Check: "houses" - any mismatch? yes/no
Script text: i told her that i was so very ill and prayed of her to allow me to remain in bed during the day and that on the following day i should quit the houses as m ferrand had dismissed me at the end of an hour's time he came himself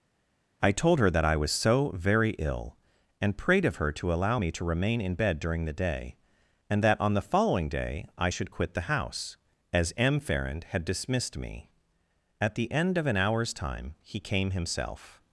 yes